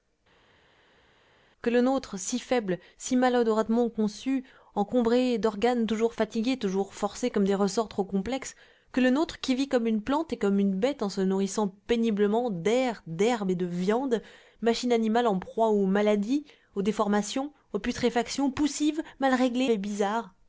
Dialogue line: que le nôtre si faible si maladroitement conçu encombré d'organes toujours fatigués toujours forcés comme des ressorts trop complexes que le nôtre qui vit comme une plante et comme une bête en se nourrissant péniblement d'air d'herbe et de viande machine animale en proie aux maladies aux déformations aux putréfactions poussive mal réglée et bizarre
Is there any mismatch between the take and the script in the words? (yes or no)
no